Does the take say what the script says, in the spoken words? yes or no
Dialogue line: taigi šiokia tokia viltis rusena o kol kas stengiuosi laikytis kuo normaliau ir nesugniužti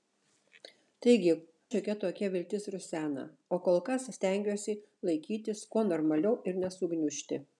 yes